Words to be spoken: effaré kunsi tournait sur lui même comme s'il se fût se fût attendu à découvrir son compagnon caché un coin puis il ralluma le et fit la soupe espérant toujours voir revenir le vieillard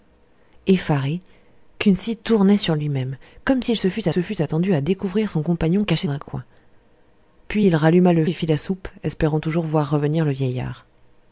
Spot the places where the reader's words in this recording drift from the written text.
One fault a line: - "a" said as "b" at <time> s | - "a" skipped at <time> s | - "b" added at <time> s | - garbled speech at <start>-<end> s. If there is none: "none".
none